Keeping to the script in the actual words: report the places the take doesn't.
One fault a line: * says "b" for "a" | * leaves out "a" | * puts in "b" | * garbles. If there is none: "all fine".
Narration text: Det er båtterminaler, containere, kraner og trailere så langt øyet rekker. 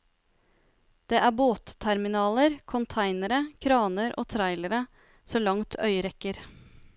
all fine